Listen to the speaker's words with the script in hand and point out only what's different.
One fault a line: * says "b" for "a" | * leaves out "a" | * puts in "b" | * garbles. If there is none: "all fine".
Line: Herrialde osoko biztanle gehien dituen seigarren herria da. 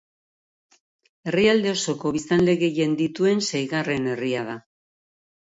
all fine